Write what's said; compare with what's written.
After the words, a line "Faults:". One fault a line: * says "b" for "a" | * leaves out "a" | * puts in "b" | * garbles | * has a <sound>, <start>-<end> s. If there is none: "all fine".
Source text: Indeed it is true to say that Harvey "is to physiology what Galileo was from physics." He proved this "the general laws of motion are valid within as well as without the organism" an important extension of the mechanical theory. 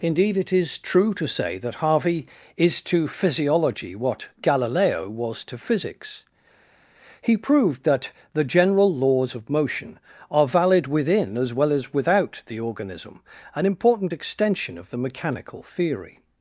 Indeed it is true to say that Harvey "is to physiology what Galileo was to physics." He proved that "the general laws of motion are valid within as well as without the organism" an important extension of the mechanical theory.
Faults:
* says "to" for "from"
* says "that" for "this"